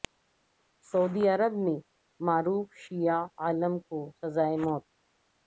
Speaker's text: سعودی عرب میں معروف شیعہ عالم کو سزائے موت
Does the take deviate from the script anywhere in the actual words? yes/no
no